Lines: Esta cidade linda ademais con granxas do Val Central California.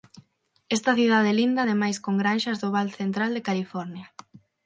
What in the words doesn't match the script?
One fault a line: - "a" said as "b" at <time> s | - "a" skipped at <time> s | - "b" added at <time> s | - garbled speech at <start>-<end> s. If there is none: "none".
- "de" added at 3.3 s